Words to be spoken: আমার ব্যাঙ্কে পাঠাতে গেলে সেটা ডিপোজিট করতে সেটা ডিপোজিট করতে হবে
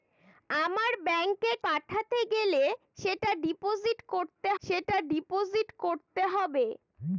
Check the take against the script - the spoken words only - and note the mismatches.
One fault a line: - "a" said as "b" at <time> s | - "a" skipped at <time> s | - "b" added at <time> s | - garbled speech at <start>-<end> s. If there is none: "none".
none